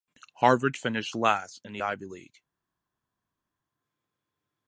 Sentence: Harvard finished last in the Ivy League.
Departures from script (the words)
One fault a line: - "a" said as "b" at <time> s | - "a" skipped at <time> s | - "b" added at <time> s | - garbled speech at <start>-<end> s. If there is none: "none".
none